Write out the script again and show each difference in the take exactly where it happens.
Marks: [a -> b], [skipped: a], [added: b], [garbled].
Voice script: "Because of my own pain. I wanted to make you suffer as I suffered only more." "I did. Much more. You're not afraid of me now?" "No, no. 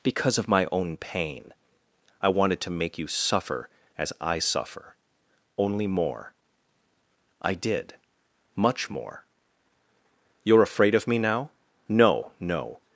"Because of my own pain. I wanted to make you suffer as I [suffered -> suffer] only more." "I did. Much more. You're [skipped: not] afraid of me now?" "No, no.